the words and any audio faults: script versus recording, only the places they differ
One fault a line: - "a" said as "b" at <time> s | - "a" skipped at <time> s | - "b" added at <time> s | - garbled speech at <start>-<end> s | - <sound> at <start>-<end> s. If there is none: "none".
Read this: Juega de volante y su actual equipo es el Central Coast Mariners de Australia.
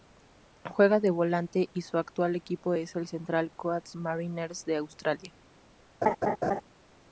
- laugh at 6.0-6.6 s